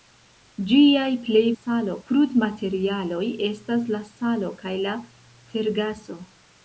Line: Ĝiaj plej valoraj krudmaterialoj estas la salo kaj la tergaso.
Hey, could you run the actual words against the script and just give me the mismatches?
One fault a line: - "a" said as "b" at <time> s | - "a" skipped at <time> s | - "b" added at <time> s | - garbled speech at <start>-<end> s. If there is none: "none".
- "valoraj" said as "salo" at 1.5 s